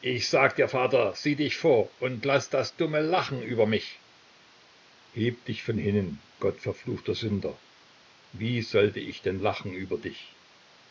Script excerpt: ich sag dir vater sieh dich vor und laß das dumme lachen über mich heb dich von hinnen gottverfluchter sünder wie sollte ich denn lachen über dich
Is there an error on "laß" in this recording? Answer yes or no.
no